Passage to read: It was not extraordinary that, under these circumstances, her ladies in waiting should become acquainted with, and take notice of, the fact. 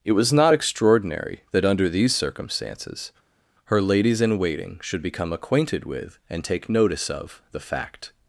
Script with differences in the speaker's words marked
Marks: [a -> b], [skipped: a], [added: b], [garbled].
It was not extraordinary that, under these circumstances, her ladies in waiting should become acquainted with, and take notice of, the fact.